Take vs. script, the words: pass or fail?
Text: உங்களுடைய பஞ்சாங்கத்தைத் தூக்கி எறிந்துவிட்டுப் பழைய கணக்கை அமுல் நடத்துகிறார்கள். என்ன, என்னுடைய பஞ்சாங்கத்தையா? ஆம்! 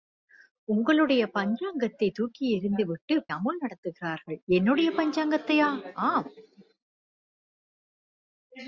fail